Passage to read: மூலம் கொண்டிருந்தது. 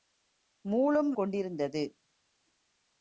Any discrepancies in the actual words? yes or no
no